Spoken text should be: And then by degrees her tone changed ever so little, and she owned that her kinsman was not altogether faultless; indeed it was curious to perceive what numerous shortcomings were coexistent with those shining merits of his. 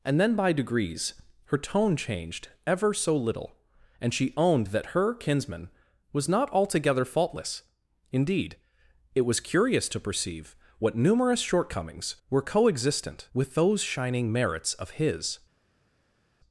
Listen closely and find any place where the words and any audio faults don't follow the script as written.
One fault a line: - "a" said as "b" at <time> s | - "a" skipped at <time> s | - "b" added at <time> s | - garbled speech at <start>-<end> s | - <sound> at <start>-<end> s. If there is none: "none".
none